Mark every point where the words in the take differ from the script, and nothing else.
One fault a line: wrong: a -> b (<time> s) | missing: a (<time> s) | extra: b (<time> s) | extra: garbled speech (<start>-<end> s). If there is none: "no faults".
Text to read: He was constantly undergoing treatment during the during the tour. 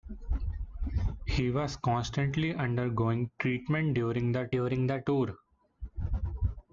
no faults